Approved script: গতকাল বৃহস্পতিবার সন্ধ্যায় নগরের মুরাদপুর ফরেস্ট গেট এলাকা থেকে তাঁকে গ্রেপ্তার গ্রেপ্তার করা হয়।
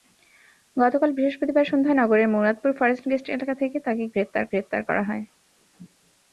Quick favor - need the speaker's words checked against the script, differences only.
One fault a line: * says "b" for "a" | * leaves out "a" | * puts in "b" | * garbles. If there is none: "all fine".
all fine